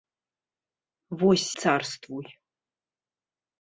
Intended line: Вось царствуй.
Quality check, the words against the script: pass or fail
pass